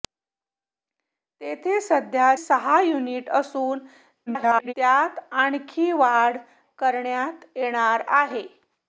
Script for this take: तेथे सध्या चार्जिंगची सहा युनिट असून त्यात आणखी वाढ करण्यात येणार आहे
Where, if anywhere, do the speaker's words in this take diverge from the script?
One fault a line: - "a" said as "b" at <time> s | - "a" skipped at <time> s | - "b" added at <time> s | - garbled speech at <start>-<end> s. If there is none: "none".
- "चार्जिंगची" skipped at 2.3 s
- garbled speech at 4.3-4.7 s